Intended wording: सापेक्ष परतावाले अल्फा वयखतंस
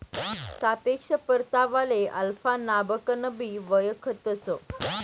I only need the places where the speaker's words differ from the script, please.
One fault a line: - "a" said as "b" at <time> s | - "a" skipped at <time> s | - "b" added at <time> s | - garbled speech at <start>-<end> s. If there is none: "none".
- "नावकनबी" added at 2.6 s